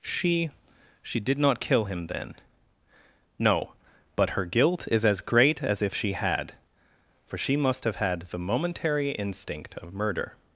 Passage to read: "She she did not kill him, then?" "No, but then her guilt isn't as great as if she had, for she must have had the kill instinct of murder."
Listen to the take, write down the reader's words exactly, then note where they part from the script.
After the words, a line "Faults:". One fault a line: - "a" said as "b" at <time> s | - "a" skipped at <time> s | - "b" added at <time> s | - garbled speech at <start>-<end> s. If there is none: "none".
"She she did not kill him, then?" "No, but her guilt is as great as if she had, for she must have had the momentary instinct of murder."
Faults:
- "then" skipped at 4.3 s
- "isn't" said as "is" at 4.9 s
- "kill" said as "momentary" at 8.4 s